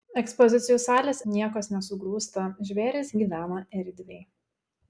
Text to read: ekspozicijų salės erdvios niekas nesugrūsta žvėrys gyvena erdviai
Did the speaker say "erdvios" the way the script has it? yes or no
no